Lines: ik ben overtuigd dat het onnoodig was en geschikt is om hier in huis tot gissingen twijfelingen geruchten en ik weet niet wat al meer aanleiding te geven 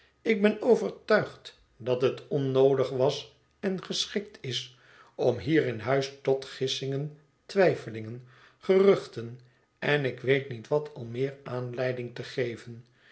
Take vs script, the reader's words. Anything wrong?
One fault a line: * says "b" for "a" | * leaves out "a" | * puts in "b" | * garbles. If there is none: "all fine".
all fine